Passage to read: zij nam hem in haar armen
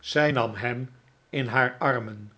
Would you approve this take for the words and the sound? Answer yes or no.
yes